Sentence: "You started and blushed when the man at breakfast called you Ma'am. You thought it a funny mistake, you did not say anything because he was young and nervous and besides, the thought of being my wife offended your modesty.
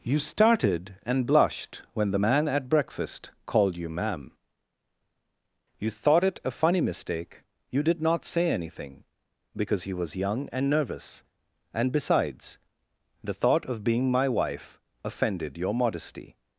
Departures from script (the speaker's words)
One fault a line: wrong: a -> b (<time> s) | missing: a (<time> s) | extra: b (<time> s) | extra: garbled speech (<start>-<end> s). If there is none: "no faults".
no faults